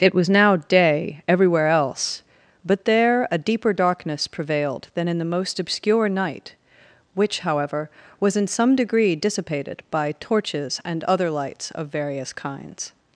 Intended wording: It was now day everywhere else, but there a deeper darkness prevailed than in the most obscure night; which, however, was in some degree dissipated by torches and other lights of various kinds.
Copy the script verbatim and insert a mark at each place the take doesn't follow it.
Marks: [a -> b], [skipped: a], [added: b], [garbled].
It was now day everywhere else, but there a deeper darkness prevailed than in the most obscure night; which, however, was in some degree dissipated by torches and other lights of various kinds.